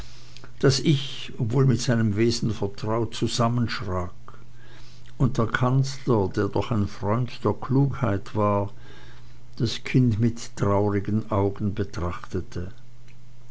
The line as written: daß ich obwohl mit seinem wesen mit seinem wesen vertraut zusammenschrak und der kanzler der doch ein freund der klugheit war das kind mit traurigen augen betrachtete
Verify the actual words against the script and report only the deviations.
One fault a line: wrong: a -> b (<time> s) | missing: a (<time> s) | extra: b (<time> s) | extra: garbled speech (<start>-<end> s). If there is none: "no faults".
missing: mit seinem wesen (2.5 s)